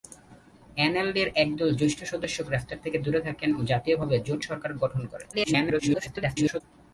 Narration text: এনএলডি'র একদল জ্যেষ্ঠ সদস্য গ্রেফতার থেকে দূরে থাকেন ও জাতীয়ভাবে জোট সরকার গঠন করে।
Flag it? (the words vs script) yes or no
yes